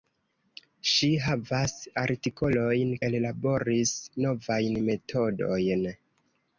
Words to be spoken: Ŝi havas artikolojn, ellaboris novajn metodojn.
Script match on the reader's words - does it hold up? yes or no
yes